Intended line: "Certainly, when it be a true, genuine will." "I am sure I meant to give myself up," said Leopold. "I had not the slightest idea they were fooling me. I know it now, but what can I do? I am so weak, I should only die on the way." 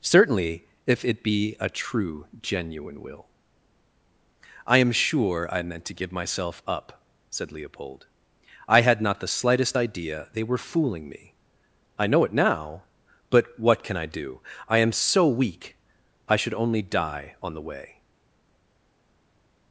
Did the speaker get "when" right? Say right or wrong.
wrong